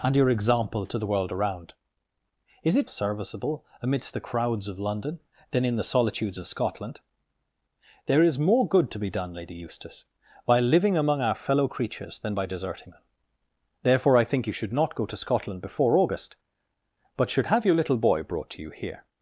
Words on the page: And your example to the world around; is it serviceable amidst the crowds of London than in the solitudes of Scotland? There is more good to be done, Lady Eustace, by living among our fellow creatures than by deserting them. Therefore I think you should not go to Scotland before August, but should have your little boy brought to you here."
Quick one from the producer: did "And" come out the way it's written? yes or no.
yes